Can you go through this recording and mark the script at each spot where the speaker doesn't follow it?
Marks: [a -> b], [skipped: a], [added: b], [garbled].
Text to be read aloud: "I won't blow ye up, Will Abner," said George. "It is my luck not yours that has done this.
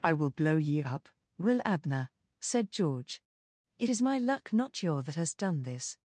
"I [won't -> will] blow ye up, Will Abner," said George. "It is my luck not [yours -> your] that has done this.